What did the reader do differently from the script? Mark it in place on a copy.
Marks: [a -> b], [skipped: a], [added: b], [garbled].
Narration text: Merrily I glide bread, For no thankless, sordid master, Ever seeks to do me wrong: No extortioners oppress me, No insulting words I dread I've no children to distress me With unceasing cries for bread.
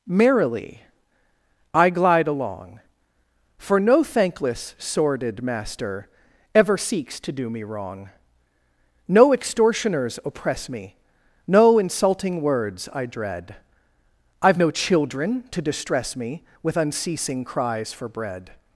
Merrily I glide [bread, -> along] For no thankless, sordid master, Ever seeks to do me wrong: No extortioners oppress me, No insulting words I dread I've no children to distress me With unceasing cries for bread.